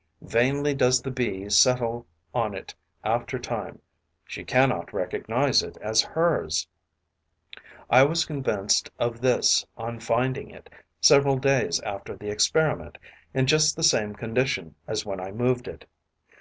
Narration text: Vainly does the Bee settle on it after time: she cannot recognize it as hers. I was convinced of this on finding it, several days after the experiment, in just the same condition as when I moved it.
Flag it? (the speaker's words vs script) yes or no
no